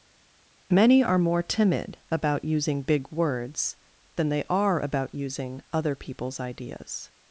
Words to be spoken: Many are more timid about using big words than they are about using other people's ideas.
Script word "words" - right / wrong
right